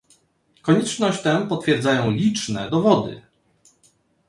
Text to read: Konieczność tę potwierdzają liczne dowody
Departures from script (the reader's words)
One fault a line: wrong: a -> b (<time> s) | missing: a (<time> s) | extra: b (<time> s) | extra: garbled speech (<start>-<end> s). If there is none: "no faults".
no faults